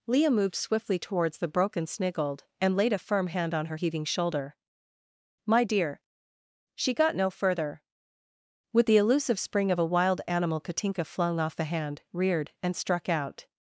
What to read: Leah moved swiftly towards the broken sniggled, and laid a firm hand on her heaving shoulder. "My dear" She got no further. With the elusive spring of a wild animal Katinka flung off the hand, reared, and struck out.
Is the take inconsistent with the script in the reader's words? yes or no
no